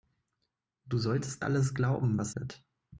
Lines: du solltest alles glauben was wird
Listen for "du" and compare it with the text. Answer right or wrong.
right